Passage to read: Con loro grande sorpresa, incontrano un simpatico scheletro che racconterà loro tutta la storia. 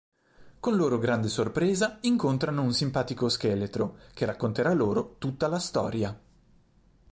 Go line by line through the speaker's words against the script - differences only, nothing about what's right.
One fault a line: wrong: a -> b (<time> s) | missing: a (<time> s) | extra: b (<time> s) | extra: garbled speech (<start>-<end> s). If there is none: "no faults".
no faults